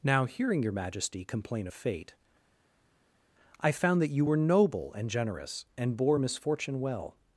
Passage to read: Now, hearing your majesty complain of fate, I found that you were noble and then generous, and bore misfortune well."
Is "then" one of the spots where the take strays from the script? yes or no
yes